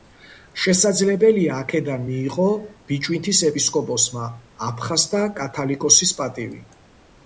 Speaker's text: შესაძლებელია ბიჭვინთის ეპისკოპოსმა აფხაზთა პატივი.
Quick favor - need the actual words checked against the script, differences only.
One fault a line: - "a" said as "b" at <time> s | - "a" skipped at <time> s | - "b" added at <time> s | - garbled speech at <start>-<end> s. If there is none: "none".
- "აქედან მიიღო" added at 1.6 s
- "კათალიკოსის" added at 5.4 s